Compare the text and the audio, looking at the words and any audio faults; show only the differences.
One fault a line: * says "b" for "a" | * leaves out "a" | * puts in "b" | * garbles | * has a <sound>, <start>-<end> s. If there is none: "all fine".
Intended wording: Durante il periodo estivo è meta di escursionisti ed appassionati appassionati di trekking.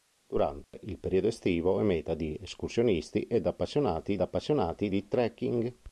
* has a dropout, 0.6-0.7 s